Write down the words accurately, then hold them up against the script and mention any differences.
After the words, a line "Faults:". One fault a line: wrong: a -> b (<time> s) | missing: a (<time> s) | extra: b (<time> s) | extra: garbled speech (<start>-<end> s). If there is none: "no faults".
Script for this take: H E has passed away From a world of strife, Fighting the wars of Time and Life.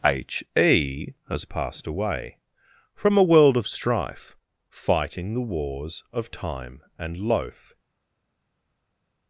H E has passed away From a world of strife, Fighting the wars of Time and Loaf.
Faults:
wrong: Life -> Loaf (7.2 s)